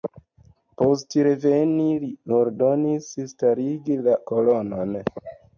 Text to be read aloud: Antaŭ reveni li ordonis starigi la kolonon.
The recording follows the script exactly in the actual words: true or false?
false